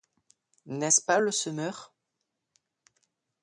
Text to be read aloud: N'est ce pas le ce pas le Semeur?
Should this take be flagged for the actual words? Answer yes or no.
yes